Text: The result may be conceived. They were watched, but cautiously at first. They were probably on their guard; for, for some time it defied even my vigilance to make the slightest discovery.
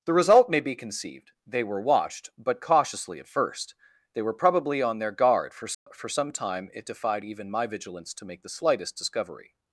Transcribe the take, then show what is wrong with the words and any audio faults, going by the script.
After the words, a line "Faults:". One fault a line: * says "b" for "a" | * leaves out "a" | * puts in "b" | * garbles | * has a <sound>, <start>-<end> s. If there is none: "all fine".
The result may be conceived. They were watched, but cautiously at first. They were probably on their guard; for, for some time it defied even my vigilance to make the slightest discovery.
Faults:
* has a dropout, 5.7-5.9 s